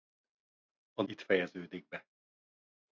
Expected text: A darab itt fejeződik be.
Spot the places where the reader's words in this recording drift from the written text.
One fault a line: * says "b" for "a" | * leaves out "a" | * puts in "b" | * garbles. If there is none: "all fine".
* leaves out "darab"